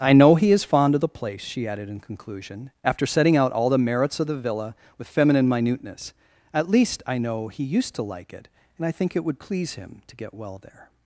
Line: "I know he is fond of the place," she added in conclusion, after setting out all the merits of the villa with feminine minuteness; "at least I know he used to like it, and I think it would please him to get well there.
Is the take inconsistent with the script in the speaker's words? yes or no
no